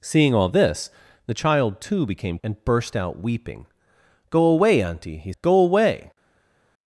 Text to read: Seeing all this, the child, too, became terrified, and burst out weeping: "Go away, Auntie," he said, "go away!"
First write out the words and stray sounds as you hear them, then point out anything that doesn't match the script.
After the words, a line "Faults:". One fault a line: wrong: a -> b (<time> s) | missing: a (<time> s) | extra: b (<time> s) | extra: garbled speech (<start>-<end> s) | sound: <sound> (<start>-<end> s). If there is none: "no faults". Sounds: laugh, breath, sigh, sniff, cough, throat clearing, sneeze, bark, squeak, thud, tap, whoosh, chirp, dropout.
Seeing all this, the child, too, became and burst out weeping: "Go away, Auntie," he "go away!"
Faults:
missing: terrified (2.4 s)
missing: said (5.3 s)